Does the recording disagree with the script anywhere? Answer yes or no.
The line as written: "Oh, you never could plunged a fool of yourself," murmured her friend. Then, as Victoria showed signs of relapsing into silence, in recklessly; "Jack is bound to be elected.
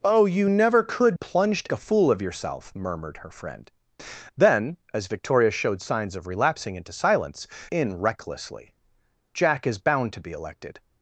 no